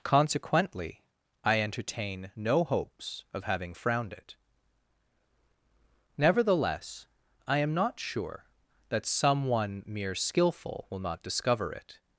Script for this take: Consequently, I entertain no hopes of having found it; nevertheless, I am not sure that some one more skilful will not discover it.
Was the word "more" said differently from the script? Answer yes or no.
yes